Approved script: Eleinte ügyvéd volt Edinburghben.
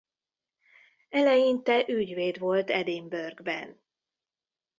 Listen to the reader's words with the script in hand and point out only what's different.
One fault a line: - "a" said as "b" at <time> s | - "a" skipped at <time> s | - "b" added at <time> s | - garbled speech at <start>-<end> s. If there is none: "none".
none